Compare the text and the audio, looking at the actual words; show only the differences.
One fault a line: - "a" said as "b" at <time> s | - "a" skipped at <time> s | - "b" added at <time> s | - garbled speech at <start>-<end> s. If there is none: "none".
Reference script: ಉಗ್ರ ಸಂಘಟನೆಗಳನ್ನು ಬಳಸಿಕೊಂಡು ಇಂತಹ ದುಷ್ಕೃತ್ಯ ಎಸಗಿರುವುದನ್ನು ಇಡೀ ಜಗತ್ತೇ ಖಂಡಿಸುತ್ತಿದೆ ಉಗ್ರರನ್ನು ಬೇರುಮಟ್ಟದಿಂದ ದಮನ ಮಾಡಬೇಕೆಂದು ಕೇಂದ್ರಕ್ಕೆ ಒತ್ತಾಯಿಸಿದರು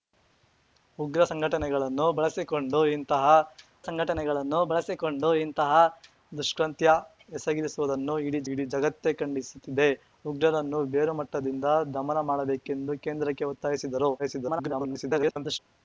- "ಸಂಘಟನೆಗಳನ್ನು ಬಳಸಿಕೊಂಡು ಇಂತಹ" added at 3.9 s
- "ಇಡೀ" added at 8.5 s
- garbled speech at 14.2-15.6 s